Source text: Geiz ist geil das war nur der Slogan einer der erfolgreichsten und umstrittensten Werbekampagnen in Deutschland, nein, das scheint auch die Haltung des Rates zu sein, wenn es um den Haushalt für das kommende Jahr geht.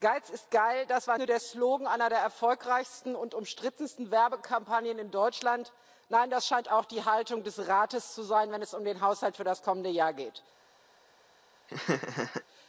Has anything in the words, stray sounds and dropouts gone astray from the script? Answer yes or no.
yes